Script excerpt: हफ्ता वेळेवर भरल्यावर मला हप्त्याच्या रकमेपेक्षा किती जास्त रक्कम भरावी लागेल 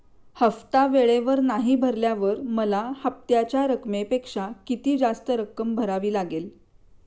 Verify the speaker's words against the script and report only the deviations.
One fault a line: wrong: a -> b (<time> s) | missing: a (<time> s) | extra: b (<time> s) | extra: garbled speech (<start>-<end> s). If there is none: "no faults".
extra: नाही (1.4 s)